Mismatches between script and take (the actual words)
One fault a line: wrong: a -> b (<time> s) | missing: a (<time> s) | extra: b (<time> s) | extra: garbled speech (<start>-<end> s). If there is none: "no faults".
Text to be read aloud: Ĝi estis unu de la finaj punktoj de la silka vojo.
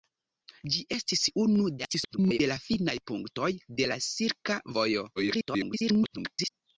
extra: garbled speech (1.8-2.4 s)
extra: garbled speech (5.2-6.5 s)